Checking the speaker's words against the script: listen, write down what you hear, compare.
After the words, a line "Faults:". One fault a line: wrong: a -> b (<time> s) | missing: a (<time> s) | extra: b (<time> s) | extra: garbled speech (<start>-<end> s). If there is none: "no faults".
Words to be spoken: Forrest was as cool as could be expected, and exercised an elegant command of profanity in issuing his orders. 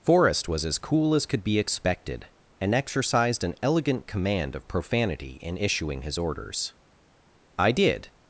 Forrest was as cool as could be expected, and exercised an elegant command of profanity in issuing his orders. "I did
Faults:
extra: I did (7.6 s)